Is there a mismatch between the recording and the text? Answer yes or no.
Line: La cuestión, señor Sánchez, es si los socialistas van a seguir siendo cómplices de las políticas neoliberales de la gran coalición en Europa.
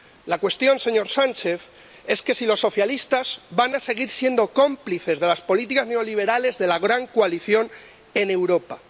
no